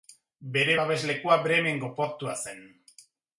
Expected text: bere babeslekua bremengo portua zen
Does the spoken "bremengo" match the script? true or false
true